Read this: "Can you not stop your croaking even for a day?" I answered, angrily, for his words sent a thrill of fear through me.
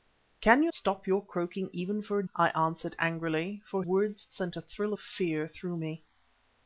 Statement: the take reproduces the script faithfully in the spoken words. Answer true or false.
false